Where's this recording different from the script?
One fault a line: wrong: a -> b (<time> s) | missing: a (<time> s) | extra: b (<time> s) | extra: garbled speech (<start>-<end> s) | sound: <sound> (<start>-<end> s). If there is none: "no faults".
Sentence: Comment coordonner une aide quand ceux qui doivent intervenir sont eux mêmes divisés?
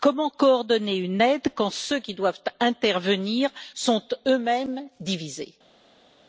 no faults